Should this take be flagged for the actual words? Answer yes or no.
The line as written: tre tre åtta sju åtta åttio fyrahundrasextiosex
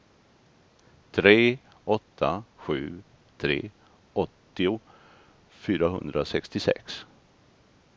yes